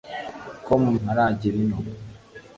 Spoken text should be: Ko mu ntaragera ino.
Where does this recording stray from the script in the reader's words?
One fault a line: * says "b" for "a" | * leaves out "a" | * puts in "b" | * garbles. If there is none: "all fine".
all fine